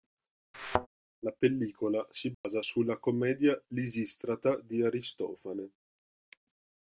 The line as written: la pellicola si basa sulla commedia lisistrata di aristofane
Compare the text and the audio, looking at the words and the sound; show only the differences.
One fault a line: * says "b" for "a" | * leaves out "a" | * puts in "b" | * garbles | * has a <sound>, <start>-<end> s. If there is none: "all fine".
* has a thud, 0.5-0.9 s
* has a dropout, 2.3-2.4 s